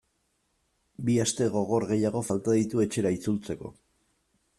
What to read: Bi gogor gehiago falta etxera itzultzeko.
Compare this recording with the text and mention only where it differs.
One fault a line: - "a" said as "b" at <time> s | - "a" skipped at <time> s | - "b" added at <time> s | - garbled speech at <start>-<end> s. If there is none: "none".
- "aste" added at 1.2 s
- "ditu" added at 2.6 s